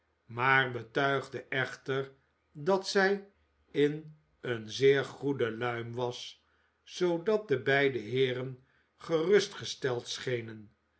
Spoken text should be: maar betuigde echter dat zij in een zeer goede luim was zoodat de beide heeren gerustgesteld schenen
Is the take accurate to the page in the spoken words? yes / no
yes